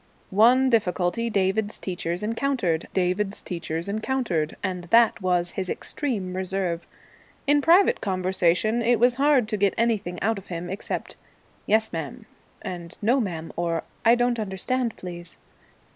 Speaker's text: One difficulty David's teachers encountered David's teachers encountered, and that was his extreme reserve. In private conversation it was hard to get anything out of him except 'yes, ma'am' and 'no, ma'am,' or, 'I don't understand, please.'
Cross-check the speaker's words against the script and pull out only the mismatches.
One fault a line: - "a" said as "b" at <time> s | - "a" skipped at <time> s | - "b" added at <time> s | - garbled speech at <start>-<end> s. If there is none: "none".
none